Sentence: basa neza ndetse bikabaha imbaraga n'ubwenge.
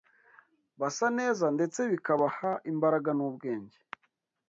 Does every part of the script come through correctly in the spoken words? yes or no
yes